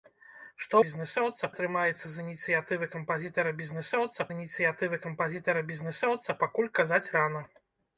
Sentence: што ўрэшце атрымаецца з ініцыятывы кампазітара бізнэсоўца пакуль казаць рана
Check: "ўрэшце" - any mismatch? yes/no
yes